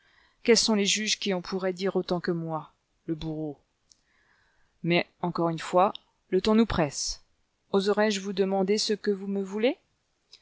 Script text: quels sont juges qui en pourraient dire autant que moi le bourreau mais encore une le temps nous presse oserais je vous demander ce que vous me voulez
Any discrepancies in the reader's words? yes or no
yes